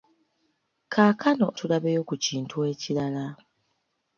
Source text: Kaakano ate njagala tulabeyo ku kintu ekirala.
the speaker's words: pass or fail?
fail